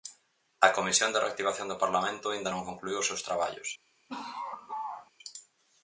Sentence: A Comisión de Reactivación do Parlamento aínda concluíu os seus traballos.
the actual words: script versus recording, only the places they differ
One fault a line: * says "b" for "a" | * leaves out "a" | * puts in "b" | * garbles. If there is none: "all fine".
* puts in "non"